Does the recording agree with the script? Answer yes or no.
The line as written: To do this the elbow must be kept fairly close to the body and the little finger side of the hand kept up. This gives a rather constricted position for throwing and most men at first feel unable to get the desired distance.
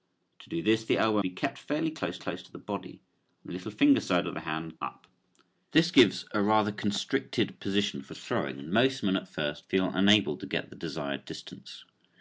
no